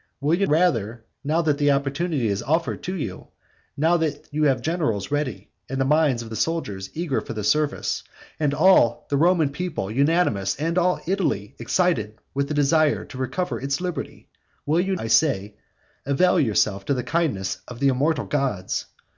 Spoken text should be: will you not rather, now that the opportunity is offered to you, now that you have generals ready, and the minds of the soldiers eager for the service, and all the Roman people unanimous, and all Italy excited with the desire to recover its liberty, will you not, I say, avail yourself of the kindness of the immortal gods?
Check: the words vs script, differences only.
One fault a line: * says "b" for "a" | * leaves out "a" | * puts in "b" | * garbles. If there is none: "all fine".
* leaves out "not"
* leaves out "not"